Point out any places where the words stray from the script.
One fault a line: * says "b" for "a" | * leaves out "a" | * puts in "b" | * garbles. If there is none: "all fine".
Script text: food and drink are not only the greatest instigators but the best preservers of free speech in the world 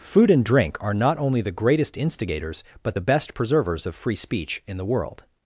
all fine